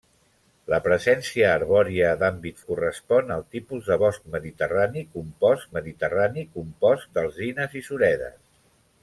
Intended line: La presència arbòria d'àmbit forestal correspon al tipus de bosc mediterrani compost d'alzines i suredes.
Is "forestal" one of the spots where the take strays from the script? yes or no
yes